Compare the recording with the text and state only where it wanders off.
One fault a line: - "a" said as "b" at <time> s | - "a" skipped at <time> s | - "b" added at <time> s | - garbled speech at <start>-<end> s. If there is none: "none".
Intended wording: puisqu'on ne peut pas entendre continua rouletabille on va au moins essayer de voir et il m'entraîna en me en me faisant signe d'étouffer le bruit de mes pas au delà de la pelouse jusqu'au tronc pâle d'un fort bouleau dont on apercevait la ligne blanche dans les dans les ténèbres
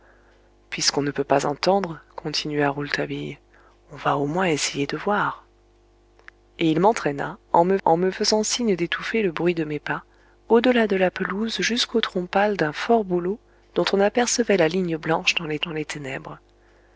none